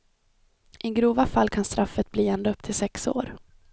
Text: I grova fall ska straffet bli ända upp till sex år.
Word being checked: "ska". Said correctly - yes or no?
no